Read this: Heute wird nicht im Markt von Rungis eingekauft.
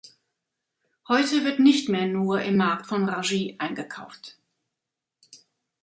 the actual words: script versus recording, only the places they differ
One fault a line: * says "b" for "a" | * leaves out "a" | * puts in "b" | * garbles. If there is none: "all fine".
* puts in "mehr nur"